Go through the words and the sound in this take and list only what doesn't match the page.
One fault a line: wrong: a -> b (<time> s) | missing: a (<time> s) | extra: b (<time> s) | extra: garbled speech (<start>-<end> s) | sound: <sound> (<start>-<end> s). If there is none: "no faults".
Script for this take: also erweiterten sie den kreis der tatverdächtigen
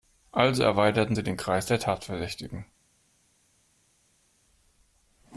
no faults